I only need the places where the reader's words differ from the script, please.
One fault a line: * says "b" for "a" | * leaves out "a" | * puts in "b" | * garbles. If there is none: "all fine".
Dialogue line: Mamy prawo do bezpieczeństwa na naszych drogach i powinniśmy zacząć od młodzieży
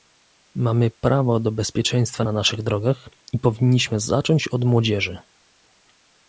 all fine